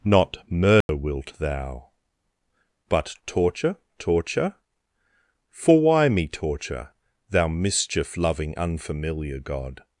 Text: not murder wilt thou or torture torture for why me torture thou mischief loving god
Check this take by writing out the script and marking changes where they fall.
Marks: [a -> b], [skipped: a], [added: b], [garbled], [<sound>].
not murder [dropout] wilt thou [or -> but] torture torture for why me torture thou mischief loving [added: unfamiliar] god